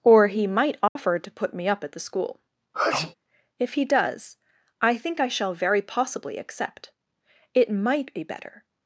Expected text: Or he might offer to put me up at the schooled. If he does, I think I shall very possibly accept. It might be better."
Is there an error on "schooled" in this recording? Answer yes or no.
yes